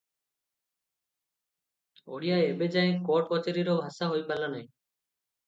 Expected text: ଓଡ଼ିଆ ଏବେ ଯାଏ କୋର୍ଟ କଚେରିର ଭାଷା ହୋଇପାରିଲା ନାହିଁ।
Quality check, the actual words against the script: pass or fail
pass